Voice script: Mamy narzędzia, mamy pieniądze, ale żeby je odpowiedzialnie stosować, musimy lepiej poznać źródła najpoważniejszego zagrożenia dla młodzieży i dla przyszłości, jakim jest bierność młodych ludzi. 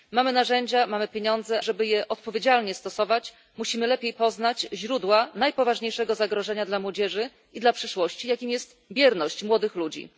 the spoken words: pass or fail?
fail